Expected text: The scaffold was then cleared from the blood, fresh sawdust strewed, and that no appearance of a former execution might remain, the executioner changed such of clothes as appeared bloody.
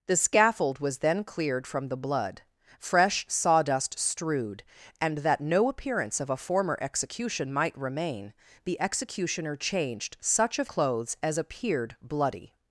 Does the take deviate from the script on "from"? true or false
false